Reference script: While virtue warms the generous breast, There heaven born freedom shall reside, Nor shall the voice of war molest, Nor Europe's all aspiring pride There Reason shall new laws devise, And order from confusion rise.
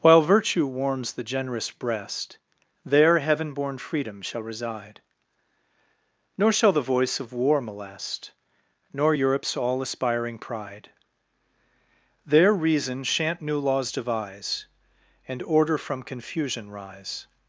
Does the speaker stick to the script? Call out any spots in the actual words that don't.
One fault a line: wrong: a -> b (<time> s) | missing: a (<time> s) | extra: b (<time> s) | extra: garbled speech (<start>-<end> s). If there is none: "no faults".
wrong: shall -> shan't (13.0 s)